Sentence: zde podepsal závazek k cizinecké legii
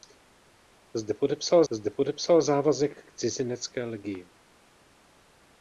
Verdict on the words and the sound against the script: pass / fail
fail